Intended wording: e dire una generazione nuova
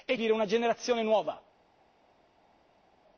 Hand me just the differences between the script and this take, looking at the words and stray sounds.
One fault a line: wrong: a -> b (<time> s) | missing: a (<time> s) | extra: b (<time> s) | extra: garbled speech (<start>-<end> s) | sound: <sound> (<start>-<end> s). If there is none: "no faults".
no faults